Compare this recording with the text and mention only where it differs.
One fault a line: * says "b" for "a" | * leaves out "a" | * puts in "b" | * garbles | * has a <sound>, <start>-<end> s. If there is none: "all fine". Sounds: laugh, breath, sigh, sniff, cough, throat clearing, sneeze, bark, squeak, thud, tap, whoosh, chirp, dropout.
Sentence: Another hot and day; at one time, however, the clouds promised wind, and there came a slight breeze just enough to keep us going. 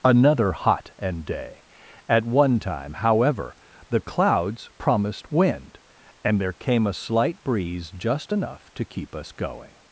all fine